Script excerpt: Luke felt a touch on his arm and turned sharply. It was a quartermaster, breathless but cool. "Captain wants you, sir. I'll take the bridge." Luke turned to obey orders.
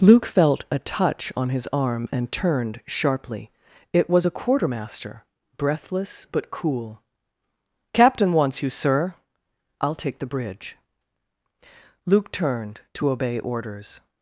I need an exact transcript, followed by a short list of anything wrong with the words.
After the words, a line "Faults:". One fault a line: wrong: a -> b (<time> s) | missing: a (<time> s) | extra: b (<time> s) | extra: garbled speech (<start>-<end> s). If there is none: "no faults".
Luke felt a touch on his arm and turned sharply. It was a quartermaster, breathless but cool. "Captain wants you, sir. I'll take the bridge." Luke turned to obey orders.
Faults:
no faults